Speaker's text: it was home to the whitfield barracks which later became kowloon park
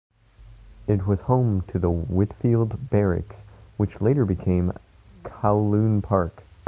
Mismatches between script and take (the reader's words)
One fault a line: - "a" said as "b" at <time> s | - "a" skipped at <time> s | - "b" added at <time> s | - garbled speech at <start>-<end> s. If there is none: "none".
none